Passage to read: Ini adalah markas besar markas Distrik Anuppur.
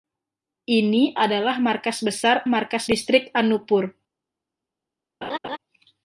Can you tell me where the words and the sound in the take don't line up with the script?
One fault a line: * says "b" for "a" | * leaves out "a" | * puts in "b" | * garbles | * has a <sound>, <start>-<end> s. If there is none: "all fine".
* has a laugh, 5.2-5.6 s